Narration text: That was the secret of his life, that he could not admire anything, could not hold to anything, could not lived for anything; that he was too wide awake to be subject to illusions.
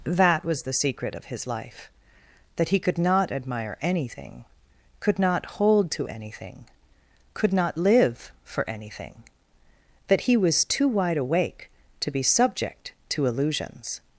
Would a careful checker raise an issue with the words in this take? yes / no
yes